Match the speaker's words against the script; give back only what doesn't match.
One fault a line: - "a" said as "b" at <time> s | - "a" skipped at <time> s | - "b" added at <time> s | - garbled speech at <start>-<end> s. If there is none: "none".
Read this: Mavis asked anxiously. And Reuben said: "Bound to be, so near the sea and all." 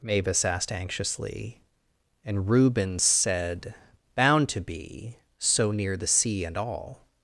none